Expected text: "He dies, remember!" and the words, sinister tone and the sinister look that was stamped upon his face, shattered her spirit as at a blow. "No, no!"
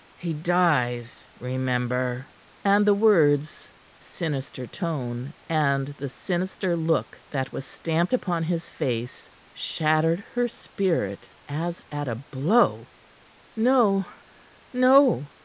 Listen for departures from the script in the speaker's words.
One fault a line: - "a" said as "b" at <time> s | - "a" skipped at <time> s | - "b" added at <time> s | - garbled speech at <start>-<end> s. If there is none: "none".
none